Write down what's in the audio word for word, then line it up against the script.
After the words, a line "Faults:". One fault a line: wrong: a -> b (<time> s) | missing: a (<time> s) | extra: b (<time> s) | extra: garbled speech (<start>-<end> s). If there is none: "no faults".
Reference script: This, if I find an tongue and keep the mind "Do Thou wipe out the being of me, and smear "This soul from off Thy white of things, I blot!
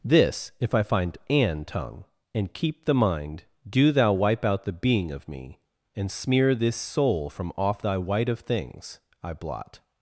This, if I find an tongue and keep the mind "Do Thou wipe out the being of me, and smear "This soul from off Thy white of things, I blot!
Faults:
no faults